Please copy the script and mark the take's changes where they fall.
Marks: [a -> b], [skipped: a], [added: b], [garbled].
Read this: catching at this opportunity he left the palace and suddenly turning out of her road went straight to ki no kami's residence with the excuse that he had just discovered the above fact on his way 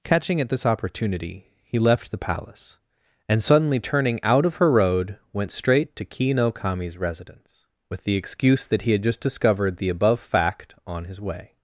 catching at this opportunity he left the palace and suddenly turning out of her road went straight to ki no kami's residence with the excuse that he had just discovered the above fact on his way